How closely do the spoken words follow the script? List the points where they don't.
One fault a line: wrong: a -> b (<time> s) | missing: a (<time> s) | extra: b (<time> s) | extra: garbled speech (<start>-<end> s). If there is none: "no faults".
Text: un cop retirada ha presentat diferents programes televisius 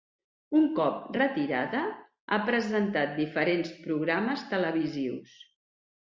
no faults